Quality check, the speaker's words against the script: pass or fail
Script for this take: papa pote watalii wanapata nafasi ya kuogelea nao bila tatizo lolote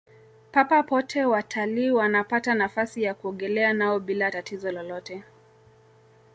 pass